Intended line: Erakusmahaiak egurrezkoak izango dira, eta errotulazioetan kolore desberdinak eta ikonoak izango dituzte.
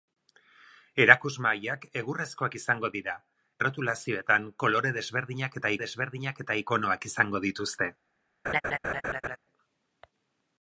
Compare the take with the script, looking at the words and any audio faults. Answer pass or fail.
fail